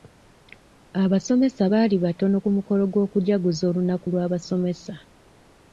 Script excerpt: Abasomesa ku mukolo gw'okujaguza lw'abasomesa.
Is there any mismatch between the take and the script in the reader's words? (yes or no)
yes